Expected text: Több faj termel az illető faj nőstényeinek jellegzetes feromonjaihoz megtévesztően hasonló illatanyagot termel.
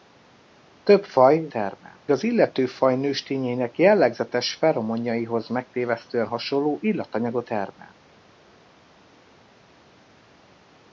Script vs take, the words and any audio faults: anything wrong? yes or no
no